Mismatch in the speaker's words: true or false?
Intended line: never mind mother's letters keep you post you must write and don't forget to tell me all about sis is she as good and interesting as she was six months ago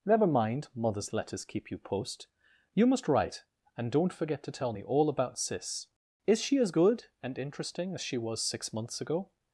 false